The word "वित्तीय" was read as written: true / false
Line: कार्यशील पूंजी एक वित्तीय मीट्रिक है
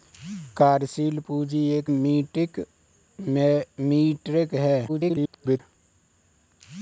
false